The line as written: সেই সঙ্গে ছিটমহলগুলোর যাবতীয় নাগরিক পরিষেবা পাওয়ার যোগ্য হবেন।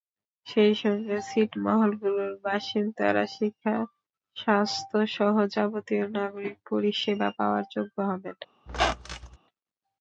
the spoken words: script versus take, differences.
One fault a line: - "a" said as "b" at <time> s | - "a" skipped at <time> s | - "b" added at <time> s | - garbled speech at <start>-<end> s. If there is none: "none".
- "বাসিন্দারা শিক্ষা স্বাস্থ্যসহ" added at 2.4 s